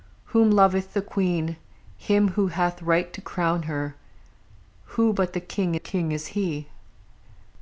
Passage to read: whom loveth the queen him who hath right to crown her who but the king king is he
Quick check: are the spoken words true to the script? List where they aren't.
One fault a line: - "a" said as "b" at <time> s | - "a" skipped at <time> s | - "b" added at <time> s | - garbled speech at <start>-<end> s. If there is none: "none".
none